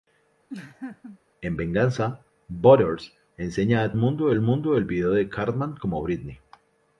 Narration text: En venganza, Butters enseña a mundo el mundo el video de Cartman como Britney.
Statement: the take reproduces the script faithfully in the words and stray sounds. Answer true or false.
false